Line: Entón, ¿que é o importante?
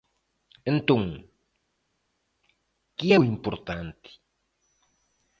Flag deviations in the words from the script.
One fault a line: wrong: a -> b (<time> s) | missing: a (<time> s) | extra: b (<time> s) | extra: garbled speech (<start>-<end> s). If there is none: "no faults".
no faults